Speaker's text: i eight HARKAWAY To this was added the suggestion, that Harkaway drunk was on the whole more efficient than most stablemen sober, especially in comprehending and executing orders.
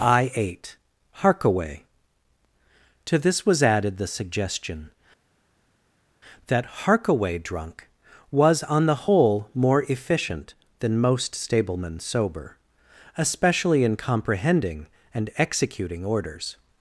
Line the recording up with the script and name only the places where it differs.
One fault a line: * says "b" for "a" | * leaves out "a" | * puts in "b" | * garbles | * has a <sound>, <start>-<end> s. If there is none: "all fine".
all fine